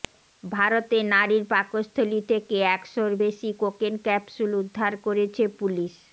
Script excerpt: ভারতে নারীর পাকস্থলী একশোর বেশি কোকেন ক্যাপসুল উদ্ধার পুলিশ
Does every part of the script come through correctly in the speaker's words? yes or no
no